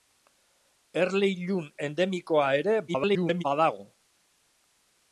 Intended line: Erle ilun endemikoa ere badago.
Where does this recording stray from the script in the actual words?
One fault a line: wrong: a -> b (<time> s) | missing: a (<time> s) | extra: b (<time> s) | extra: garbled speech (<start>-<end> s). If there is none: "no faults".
extra: garbled speech (2.9-3.4 s)